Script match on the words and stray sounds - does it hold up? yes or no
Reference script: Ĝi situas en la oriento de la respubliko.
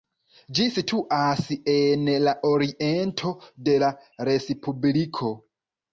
yes